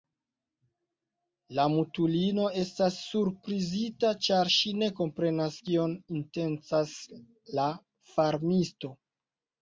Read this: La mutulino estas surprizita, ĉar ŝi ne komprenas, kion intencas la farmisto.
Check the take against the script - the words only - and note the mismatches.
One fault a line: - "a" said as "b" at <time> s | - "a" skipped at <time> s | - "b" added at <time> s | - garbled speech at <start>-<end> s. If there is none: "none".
none